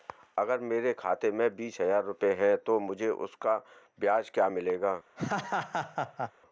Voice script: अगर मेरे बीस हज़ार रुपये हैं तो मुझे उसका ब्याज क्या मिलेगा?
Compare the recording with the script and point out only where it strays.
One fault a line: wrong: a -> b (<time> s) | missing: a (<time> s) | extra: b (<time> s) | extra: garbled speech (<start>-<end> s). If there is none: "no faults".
extra: खाते में (0.9 s)